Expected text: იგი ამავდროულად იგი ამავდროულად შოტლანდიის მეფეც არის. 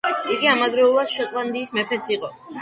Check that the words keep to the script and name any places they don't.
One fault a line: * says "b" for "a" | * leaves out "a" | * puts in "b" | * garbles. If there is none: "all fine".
* leaves out "იგი ამავდროულად"
* says "იყო" for "არის"